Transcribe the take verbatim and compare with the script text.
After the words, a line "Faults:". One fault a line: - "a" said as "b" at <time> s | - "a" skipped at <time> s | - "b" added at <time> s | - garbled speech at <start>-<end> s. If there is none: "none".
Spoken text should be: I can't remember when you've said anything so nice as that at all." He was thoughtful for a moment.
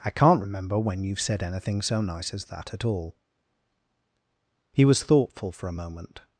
I can't remember when you've said anything so nice as that at all." He was thoughtful for a moment.
Faults:
none